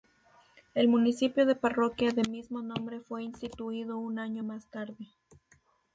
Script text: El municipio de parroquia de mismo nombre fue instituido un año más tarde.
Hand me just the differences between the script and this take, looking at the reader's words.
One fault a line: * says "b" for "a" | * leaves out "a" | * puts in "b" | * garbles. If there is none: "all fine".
all fine